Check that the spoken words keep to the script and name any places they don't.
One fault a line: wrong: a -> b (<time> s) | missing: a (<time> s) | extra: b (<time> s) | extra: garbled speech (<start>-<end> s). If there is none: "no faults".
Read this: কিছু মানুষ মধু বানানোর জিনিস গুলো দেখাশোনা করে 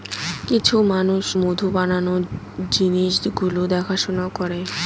no faults